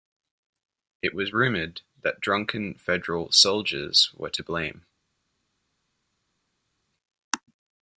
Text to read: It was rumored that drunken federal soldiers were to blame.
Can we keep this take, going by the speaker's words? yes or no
yes